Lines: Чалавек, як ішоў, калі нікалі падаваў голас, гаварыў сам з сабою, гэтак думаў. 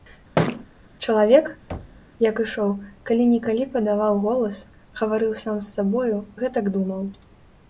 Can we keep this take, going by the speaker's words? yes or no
yes